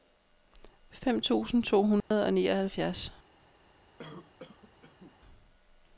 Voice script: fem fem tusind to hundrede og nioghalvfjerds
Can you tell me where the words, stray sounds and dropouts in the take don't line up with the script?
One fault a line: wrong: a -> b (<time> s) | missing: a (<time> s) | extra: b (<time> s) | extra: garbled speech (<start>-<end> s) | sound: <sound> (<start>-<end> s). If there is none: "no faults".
missing: fem (1.2 s)
sound: dropout (2.0-2.1 s)
sound: cough (4.0-5.2 s)